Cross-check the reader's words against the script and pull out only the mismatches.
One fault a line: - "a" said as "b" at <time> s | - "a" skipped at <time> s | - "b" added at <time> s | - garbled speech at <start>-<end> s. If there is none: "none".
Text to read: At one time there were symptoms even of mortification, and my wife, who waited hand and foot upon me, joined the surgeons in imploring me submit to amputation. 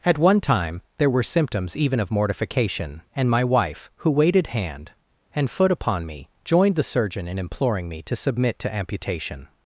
- "surgeons" said as "surgeon" at 6.8 s
- "to" added at 8.0 s